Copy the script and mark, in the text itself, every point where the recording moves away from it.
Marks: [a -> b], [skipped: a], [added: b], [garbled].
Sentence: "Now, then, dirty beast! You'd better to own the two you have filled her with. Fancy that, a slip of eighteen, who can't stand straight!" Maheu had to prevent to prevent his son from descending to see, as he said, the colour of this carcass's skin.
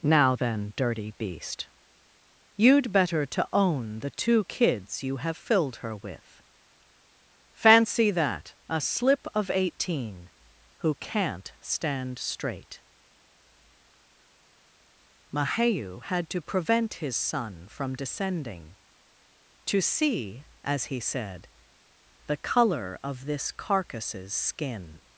"Now, then, dirty beast! You'd better to own the two [added: kids] you have filled her with. Fancy that, a slip of eighteen, who can't stand straight!" Maheu had to prevent [skipped: to prevent] his son from descending to see, as he said, the colour of this carcass's skin.